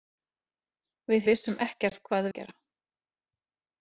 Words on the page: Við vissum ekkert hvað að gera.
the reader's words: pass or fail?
pass